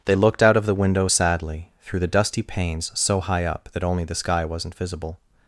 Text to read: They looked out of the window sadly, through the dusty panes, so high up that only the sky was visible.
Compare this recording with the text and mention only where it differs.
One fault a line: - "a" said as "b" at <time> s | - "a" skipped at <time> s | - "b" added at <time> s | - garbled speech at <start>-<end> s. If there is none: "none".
- "was" said as "wasn't" at 4.4 s